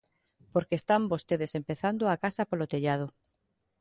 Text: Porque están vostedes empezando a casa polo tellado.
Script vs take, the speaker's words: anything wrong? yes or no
no